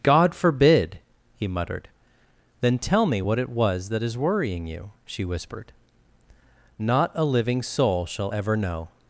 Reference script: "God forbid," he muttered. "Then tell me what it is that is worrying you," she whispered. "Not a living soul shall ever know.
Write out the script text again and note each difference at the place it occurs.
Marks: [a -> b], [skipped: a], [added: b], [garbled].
"God forbid," he muttered. "Then tell me what it [is -> was] that is worrying you," she whispered. "Not a living soul shall ever know.